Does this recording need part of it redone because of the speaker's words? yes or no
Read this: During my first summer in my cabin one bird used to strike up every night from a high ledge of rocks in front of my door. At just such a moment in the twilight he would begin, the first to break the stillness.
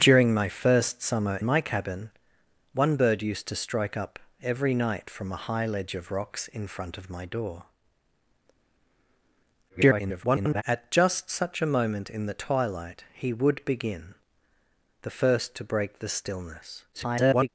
yes